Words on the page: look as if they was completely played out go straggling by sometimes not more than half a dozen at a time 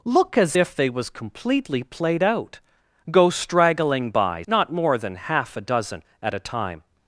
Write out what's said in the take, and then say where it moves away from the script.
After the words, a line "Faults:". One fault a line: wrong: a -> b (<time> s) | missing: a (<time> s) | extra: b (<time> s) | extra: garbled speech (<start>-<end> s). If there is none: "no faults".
look as if they was completely played out go straggling by not more than half a dozen at a time
Faults:
missing: sometimes (4.4 s)